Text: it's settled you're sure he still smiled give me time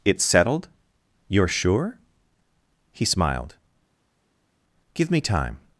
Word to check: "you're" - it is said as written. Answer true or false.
true